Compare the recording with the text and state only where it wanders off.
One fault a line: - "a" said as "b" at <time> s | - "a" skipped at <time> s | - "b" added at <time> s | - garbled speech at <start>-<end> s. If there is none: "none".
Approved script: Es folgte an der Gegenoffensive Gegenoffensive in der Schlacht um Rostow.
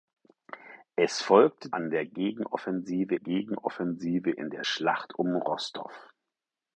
none